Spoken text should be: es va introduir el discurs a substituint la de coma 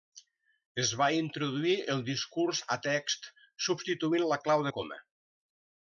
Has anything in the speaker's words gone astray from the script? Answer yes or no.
yes